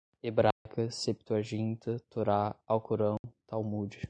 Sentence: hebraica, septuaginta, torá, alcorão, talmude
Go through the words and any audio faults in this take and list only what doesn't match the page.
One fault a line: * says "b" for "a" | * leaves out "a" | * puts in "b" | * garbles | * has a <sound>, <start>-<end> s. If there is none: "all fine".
* has a dropout, 0.5-0.7 s
* has a dropout, 3.2-3.2 s